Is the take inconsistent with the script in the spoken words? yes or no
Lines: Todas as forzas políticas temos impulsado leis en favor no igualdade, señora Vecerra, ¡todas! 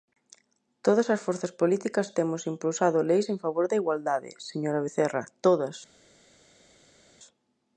yes